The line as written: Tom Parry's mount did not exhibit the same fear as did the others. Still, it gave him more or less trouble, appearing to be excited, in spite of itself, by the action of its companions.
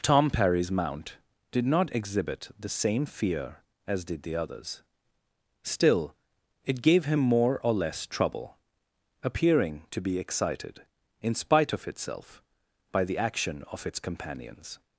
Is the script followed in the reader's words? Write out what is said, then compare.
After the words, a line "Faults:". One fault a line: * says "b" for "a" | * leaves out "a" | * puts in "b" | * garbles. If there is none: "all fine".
Tom Parry's mount did not exhibit the same fear as did the others. Still, it gave him more or less trouble, appearing to be excited, in spite of itself, by the action of its companions.
Faults:
all fine